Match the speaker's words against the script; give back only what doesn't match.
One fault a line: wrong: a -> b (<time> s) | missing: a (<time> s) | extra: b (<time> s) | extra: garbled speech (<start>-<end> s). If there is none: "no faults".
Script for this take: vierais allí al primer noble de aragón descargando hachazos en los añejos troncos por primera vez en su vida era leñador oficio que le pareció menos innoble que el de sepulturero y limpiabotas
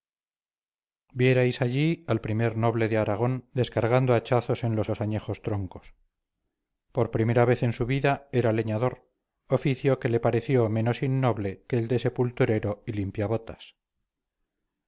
extra: los (4.9 s)